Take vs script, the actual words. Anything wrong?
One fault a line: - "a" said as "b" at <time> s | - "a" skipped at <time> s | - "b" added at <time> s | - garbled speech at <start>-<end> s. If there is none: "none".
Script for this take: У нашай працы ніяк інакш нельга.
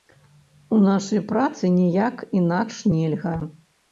none